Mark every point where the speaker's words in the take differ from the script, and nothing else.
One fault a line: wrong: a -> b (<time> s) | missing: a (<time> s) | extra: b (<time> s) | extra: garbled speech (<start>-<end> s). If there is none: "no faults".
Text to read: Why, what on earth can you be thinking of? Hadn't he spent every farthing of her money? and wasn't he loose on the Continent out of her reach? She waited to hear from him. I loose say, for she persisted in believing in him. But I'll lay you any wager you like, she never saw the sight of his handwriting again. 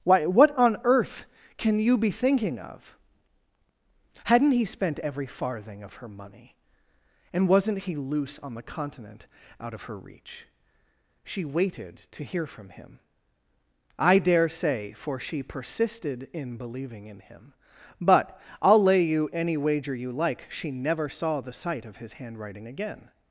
wrong: loose -> dare (14.2 s)